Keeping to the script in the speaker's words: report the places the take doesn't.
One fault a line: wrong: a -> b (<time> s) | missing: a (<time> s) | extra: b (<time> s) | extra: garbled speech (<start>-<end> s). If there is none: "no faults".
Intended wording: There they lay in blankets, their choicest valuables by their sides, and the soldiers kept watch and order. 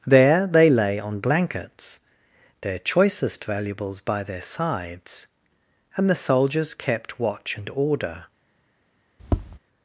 wrong: in -> on (1.0 s)